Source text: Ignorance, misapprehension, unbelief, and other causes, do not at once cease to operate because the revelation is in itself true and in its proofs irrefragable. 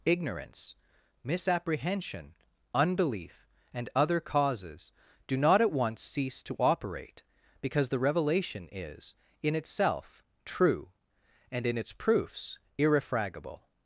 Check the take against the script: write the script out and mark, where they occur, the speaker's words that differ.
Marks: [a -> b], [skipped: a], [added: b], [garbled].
Ignorance, misapprehension, unbelief, and other causes, do not at once cease to operate because the revelation is in itself true and in its proofs irrefragable.